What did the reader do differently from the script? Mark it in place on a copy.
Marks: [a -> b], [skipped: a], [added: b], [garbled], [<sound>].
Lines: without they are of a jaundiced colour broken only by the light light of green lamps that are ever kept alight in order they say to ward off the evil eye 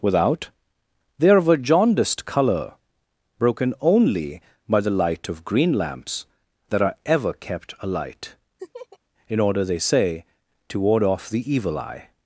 without they are of a jaundiced colour broken only by the light [skipped: light] of green lamps that are ever kept alight [laugh] in order they say to ward off the evil eye